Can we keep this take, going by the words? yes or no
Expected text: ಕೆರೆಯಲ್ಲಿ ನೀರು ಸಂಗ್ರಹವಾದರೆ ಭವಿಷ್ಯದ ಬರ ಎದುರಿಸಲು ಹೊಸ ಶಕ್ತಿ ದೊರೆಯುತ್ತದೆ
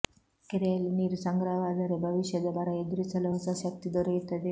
yes